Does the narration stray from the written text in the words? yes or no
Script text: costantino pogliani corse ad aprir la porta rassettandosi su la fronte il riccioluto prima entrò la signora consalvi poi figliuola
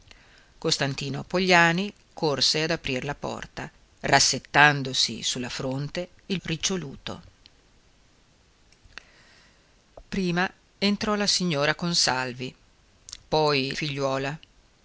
no